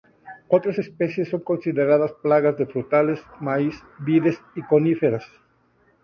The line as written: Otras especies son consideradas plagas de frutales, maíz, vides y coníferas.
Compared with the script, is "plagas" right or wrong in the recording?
right